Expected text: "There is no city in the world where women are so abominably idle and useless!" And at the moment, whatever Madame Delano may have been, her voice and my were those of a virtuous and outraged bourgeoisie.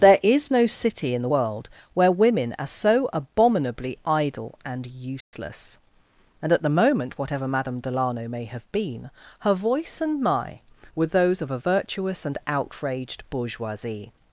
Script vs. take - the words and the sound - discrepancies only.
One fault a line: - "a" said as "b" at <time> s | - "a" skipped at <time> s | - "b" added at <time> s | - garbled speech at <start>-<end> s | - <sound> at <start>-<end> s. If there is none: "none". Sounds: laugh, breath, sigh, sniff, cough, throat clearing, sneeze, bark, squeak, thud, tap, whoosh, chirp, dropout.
- dropout at 5.2-5.3 s